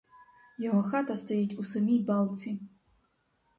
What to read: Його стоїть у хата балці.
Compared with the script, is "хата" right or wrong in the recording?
wrong